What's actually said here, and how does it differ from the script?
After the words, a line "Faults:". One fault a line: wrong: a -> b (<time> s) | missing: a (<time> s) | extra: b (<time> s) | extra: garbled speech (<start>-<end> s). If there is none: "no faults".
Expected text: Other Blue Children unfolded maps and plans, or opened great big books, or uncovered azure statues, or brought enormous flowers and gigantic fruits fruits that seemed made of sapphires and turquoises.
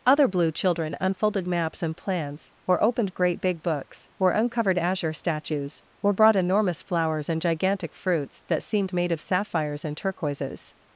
Other Blue Children unfolded maps and plans, or opened great big books, or uncovered azure statues, or brought enormous flowers and gigantic fruits that seemed made of sapphires and turquoises.
Faults:
missing: fruits (8.4 s)